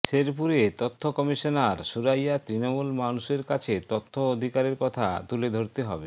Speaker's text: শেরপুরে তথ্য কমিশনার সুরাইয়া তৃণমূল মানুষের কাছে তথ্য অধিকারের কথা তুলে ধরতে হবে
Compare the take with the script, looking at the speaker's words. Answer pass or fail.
pass